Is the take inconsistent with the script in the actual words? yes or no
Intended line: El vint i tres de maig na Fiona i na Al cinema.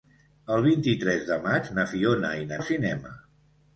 no